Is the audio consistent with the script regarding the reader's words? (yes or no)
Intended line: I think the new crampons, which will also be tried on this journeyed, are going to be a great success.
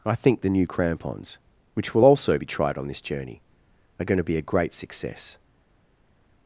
no